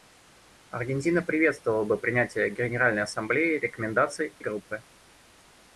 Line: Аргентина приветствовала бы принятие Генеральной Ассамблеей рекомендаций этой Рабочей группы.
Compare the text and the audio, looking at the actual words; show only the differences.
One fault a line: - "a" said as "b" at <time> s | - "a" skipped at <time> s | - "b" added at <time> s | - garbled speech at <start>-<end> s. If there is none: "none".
- "этой Рабочей" skipped at 4.3 s